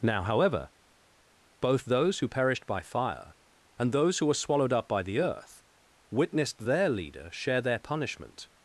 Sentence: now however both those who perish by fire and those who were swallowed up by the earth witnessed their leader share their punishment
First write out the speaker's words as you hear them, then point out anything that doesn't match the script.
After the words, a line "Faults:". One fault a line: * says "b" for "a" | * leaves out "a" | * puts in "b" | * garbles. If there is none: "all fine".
now however both those who perished by fire and those who were swallowed up by the earth witnessed their leader share their punishment
Faults:
* says "perished" for "perish"